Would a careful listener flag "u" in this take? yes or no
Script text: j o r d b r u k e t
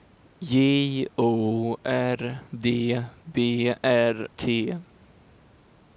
yes